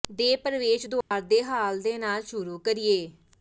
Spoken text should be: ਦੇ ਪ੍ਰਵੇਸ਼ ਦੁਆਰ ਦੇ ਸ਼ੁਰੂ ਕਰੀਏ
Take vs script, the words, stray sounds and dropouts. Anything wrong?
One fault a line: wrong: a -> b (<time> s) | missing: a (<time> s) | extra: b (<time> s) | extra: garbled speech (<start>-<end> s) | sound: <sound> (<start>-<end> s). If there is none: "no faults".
sound: dropout (1.0-1.1 s)
extra: ਹਾਲ ਦੇ ਨਾਲ (1.4 s)